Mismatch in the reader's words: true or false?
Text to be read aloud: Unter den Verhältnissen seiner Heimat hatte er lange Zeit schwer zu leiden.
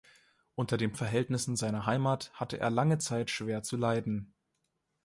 false